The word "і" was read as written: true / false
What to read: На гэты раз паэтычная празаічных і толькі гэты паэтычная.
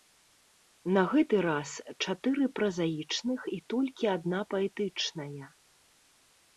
true